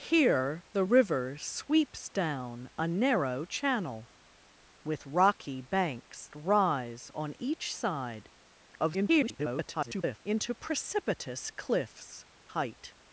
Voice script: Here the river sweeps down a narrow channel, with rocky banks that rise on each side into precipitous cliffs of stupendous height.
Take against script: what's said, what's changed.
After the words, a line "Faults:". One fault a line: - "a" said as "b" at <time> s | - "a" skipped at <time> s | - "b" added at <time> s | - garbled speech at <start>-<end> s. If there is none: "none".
Here the river sweeps down a narrow channel, with rocky banks rise on each side [garbled] into precipitous cliffs height.
Faults:
- "that" skipped at 6.3 s
- garbled speech at 8.7-10.2 s
- "of stupendous" skipped at 12.2 s